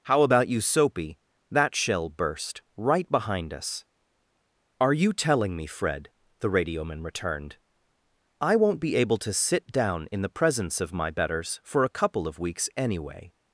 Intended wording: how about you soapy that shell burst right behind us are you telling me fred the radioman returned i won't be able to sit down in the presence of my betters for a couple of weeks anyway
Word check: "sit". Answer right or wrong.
right